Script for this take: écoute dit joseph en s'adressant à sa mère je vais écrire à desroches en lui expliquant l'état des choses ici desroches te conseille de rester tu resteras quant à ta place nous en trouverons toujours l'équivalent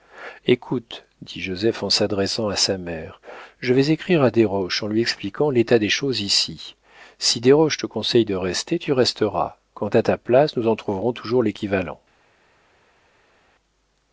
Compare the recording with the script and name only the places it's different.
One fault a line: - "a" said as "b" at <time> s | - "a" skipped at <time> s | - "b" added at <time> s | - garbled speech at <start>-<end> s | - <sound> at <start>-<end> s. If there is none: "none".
- "si" added at 7.2 s